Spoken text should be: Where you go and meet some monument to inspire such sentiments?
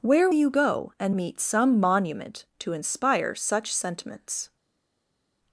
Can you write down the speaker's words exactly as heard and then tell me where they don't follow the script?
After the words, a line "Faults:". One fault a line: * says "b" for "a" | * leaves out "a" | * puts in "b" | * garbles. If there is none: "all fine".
Where you go and meet some monument to inspire such sentiments?
Faults:
all fine